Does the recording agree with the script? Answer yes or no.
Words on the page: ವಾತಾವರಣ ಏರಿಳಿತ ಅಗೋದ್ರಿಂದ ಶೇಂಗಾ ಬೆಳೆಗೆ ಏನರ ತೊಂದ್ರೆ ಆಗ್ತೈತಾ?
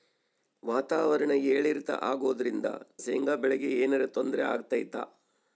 yes